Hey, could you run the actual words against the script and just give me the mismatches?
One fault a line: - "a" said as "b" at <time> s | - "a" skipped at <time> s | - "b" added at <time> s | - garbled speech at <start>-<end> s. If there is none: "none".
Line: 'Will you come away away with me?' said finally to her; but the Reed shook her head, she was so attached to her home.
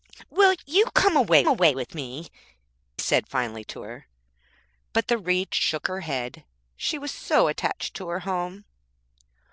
none